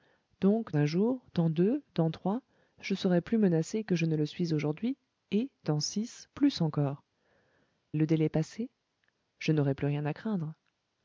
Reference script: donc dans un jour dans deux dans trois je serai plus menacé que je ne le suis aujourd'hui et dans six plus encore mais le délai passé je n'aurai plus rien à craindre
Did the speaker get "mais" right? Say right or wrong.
wrong